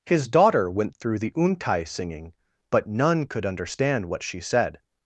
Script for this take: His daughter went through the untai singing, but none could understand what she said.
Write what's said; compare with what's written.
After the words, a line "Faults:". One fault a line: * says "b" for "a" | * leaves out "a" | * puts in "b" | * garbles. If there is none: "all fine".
His daughter went through the untai singing, but none could understand what she said.
Faults:
all fine